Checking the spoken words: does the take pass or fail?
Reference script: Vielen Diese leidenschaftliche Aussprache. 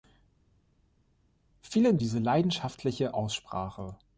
pass